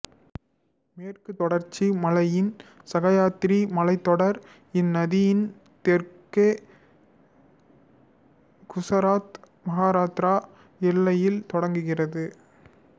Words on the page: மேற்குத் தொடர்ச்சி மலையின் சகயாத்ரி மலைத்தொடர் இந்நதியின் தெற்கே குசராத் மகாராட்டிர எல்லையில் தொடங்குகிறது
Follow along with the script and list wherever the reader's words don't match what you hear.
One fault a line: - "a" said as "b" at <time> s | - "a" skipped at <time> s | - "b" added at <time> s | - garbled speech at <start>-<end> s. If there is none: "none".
none